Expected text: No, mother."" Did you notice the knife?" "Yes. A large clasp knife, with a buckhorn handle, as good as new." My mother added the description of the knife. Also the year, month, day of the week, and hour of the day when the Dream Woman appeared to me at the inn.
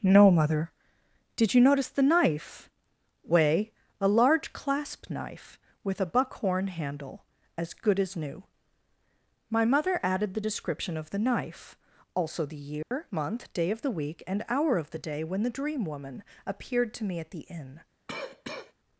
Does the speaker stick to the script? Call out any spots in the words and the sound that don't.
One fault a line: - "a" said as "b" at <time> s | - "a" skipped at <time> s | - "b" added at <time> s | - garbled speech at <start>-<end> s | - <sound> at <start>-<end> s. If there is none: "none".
- "Yes" said as "Way" at 3.2 s
- dropout at 12.8-12.9 s
- cough at 18.1-18.7 s